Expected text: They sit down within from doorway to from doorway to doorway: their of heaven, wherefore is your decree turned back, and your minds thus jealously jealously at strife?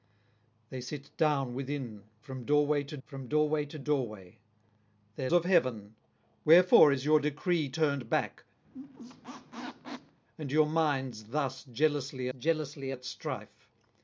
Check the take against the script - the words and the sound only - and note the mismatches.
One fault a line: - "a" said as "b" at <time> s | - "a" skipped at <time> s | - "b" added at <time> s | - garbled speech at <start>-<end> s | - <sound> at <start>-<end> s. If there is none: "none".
- squeak at 8.6-10.2 s